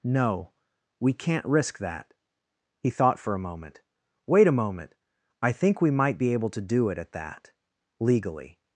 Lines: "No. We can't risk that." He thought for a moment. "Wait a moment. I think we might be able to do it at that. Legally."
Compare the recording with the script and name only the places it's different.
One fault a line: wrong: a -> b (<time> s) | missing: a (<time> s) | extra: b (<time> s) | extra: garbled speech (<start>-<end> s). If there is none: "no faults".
no faults